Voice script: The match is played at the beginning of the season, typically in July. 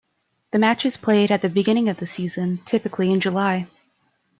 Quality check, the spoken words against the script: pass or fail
pass